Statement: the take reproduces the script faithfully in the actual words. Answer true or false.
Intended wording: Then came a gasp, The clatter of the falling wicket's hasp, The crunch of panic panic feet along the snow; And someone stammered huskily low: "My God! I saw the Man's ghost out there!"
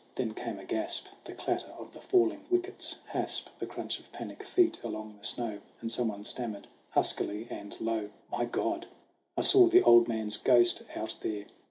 false